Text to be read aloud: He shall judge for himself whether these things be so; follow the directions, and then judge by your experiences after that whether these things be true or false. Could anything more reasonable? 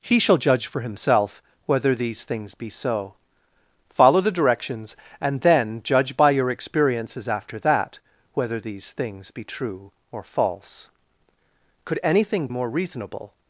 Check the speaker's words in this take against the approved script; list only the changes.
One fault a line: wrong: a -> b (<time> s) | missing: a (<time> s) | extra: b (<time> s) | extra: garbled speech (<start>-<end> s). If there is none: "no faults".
no faults